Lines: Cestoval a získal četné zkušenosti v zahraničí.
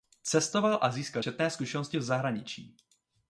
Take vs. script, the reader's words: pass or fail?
pass